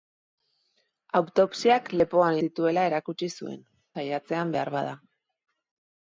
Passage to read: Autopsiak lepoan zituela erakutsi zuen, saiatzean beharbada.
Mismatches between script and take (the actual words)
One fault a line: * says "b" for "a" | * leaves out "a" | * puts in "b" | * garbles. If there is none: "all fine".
all fine